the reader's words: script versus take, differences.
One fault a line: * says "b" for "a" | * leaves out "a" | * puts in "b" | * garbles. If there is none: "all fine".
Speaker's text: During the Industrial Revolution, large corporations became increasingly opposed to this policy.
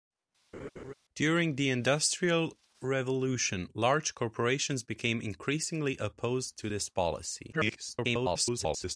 * garbles